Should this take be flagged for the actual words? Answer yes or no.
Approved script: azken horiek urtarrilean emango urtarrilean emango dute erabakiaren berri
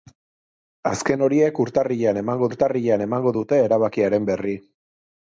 no